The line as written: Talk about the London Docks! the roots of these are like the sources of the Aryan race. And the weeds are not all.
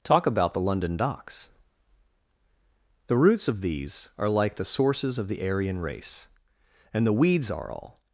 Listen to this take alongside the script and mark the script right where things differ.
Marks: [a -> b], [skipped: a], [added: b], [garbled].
Talk about the London Docks! the roots of these are like the sources of the Aryan race. And the weeds are [skipped: not] all.